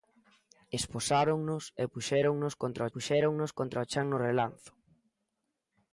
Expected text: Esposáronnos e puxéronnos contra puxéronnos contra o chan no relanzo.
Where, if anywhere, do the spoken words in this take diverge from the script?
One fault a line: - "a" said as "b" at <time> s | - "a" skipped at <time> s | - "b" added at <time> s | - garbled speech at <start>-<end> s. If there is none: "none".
none